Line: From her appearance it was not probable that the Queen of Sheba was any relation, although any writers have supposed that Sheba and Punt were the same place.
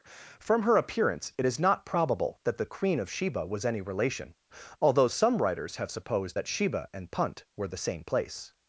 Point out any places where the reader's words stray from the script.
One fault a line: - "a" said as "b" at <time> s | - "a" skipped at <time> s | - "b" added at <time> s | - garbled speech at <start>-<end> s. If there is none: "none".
- "was" said as "is" at 1.4 s
- "any" said as "some" at 5.1 s